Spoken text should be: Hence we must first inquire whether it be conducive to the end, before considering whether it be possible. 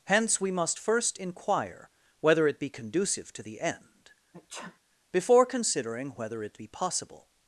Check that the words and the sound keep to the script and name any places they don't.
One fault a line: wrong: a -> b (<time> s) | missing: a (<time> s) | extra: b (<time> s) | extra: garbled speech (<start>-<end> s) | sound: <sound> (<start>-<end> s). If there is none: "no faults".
sound: sneeze (4.3-4.8 s)